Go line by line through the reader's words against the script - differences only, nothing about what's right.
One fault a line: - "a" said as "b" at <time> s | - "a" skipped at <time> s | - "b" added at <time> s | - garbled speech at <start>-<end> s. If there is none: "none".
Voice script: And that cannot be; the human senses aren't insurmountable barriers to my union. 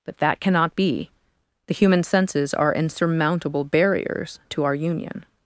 - "And" said as "But" at 0.1 s
- "aren't" said as "are" at 2.5 s
- "my" said as "our" at 4.6 s